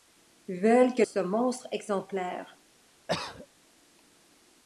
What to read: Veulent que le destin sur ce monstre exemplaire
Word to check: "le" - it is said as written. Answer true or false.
false